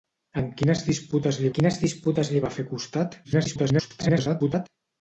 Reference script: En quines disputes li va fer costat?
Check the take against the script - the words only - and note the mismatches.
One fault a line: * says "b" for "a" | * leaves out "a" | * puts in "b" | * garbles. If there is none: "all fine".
* puts in "quines disputes li"
* garbles